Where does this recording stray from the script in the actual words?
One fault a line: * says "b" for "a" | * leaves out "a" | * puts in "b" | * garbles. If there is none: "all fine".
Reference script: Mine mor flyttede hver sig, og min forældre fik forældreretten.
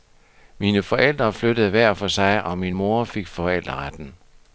* says "forældre" for "mor"
* puts in "for"
* says "mor" for "forældre"